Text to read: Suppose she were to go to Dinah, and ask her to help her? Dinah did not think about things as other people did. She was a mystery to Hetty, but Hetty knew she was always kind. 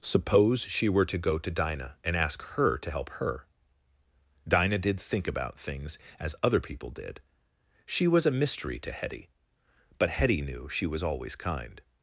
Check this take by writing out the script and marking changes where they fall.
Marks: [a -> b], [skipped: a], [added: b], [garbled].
Suppose she were to go to Dinah, and ask her to help her? Dinah did [skipped: not] think about things as other people did. She was a mystery to Hetty, but Hetty knew she was always kind.